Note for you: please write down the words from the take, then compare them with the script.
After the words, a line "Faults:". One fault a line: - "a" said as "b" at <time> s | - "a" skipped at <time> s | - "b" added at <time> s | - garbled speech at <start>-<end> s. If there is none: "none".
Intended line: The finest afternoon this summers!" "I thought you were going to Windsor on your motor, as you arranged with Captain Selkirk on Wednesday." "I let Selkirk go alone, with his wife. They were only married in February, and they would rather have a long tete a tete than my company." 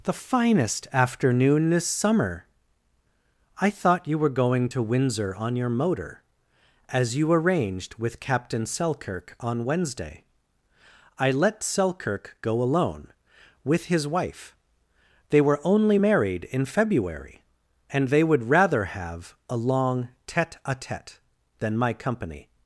The finest afternoon this summer!" "I thought you were going to Windsor on your motor, as you arranged with Captain Selkirk on Wednesday." "I let Selkirk go alone, with his wife. They were only married in February, and they would rather have a long tete a tete than my company."
Faults:
- "summers" said as "summer" at 1.9 s